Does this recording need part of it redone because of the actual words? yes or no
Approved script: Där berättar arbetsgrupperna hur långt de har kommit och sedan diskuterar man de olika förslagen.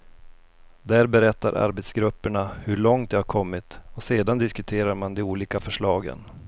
no